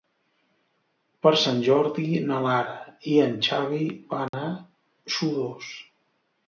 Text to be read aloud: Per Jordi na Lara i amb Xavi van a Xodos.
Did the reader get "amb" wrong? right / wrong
wrong